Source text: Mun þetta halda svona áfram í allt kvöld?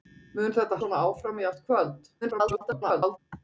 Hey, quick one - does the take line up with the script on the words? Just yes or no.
no